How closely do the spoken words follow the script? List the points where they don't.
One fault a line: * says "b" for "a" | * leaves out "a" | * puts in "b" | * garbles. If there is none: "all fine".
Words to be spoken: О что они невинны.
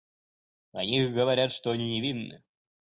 * puts in "них говорят"